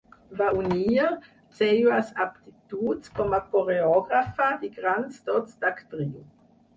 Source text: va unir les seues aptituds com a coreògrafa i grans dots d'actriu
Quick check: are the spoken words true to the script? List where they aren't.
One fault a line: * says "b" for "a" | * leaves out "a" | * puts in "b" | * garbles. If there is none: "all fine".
* leaves out "les"